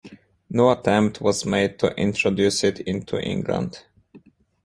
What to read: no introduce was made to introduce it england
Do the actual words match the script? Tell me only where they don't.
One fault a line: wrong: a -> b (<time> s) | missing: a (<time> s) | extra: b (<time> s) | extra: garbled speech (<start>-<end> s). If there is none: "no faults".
wrong: introduce -> attempt (0.7 s)
extra: into (2.8 s)